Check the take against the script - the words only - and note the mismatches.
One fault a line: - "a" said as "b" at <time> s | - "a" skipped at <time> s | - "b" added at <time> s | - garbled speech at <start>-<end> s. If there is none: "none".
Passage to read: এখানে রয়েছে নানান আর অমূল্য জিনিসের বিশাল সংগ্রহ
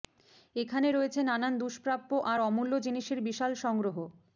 - "দুষ্প্রাপ্য" added at 1.6 s